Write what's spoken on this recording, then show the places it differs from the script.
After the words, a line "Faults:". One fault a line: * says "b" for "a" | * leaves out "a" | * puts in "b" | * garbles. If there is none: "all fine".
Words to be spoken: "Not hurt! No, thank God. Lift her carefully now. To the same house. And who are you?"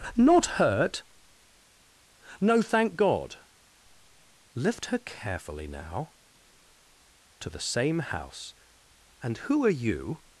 "Not hurt! No, thank God. Lift her carefully now. To the same house. And who are you?"
Faults:
all fine